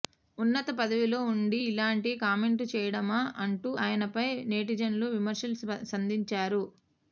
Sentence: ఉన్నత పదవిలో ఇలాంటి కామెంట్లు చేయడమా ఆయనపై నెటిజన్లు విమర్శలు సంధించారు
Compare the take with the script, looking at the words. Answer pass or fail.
fail